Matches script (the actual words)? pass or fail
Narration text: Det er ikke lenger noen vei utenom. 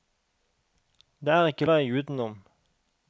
fail